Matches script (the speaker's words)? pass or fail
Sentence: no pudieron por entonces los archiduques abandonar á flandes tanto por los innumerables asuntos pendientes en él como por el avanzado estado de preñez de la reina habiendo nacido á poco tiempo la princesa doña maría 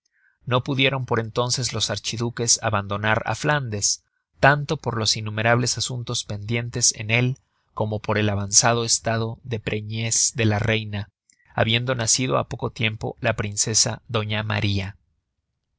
pass